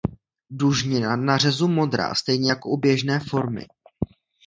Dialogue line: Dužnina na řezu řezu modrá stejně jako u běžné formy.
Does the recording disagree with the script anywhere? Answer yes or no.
yes